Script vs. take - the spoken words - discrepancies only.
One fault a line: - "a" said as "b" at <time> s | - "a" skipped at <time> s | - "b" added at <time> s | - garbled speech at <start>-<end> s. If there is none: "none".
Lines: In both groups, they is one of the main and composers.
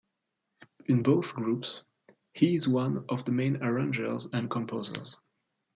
- "they" said as "he" at 2.3 s
- "arrangers" added at 3.6 s